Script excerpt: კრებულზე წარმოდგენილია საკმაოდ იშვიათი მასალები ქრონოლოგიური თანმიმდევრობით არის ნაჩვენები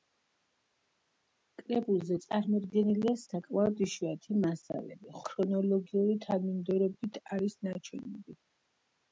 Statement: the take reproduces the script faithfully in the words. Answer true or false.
true